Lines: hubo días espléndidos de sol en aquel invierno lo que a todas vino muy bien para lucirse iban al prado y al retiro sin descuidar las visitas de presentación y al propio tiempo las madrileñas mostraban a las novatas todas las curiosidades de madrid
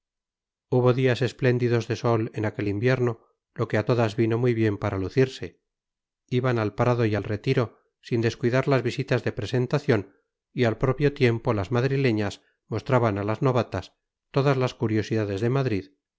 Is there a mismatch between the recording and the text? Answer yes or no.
no